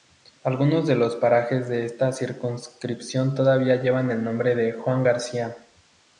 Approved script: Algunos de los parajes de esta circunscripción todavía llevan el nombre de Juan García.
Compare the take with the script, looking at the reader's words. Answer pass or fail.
pass